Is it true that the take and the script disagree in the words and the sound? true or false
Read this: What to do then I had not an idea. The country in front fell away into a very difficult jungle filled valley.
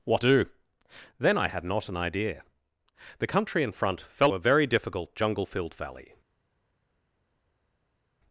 true